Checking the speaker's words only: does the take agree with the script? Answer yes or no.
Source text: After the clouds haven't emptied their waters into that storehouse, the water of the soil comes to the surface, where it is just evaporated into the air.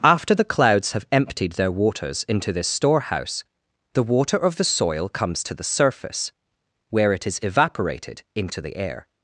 no